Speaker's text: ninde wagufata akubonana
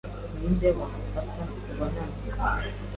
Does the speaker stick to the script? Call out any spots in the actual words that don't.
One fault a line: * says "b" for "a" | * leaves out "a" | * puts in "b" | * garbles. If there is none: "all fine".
all fine